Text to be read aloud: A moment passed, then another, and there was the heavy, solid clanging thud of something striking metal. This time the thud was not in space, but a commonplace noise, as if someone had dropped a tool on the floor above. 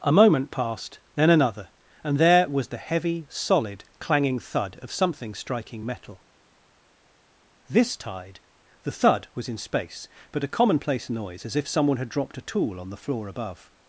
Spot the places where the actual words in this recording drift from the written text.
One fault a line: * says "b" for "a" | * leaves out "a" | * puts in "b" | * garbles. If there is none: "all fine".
* says "tide" for "time"
* leaves out "not"